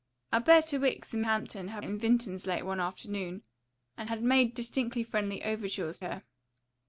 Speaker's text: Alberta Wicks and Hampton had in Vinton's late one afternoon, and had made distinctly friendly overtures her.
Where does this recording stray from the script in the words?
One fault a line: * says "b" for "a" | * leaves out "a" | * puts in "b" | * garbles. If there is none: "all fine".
all fine